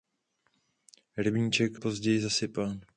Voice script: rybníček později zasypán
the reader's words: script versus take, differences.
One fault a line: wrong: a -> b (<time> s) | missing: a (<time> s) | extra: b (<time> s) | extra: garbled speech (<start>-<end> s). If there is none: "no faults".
no faults